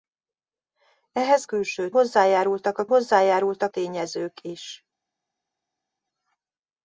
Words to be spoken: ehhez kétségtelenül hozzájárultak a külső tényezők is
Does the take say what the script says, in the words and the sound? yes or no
no